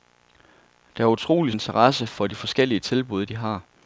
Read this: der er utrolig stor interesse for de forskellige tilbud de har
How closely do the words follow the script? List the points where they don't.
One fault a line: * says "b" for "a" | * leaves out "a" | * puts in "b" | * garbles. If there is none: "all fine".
* leaves out "stor"